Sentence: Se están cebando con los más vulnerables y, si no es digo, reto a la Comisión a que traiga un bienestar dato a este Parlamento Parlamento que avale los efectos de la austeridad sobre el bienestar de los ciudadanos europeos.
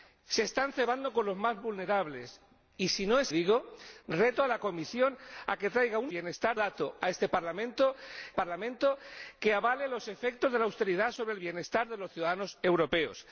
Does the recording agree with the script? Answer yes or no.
yes